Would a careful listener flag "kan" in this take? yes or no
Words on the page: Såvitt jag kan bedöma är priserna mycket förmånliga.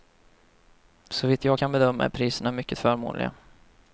no